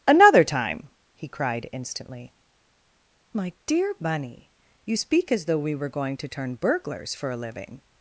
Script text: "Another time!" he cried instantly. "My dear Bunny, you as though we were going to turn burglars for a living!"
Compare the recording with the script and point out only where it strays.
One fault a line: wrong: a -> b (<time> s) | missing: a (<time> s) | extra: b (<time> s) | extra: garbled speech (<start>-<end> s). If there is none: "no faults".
extra: speak (4.9 s)